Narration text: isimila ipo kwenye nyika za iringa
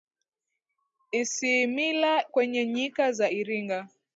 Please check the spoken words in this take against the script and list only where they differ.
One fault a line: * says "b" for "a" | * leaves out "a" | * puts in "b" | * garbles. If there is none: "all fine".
* leaves out "ipo"